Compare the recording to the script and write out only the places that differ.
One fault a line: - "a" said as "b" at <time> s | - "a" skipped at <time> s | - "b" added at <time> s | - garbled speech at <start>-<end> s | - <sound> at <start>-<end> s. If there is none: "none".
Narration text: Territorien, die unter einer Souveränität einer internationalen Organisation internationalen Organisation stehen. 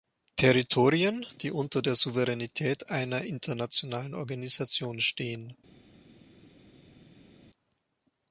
- "einer" said as "der" at 1.8 s
- "internationalen Organisation" skipped at 5.0 s